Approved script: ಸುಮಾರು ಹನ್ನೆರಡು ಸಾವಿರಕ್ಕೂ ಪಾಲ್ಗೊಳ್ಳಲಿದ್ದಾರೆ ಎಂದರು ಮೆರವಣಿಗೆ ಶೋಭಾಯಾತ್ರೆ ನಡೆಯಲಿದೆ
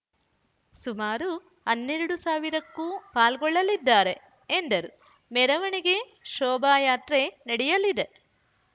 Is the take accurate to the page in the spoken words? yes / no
yes